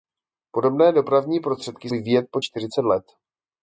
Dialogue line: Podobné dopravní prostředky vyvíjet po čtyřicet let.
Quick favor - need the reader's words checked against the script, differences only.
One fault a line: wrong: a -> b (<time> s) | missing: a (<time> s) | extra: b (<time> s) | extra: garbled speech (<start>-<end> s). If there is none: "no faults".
no faults